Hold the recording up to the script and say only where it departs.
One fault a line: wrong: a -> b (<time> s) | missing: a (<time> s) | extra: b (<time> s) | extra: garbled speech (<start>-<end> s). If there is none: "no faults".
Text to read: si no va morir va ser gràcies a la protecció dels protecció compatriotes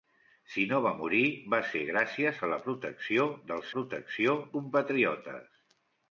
no faults